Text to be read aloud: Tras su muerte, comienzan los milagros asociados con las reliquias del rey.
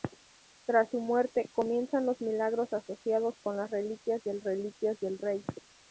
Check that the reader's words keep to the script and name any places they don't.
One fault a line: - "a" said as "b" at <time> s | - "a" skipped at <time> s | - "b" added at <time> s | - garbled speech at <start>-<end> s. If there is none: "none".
- "reliquias del" added at 4.4 s